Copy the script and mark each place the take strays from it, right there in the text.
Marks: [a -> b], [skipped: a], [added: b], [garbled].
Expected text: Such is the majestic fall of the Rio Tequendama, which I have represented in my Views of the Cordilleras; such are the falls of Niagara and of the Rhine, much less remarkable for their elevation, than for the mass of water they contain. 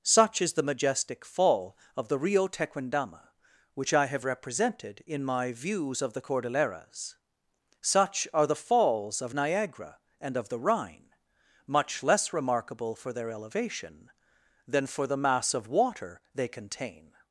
Such is the majestic fall of the Rio Tequendama, which I have represented in my Views of the Cordilleras; such are the falls of Niagara and of the Rhine, much less remarkable for their elevation, than for the mass of water they contain.